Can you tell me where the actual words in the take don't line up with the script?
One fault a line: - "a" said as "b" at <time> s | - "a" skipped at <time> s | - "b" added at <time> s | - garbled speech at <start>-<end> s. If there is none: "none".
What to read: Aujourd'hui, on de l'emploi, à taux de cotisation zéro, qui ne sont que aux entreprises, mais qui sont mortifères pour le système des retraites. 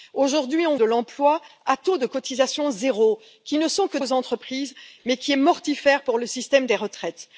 none